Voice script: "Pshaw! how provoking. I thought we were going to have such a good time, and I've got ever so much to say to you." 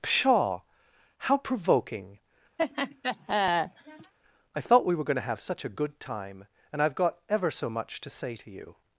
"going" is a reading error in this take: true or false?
false